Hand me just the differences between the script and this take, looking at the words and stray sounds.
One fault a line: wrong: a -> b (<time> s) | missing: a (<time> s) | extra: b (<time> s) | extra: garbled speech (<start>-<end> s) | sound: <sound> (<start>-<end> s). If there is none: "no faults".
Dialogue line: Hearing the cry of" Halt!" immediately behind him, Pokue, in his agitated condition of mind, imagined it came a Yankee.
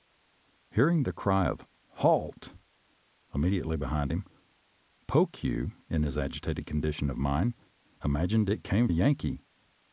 no faults